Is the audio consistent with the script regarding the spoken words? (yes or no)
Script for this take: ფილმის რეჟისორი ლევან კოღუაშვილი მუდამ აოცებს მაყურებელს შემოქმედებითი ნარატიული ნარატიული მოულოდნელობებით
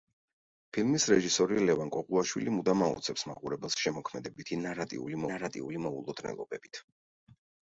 yes